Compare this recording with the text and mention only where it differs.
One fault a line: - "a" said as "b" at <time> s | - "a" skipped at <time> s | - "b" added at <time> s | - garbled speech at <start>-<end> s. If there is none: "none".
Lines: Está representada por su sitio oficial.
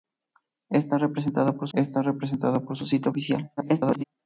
- "está representada por" added at 1.7 s
- garbled speech at 3.6-4.0 s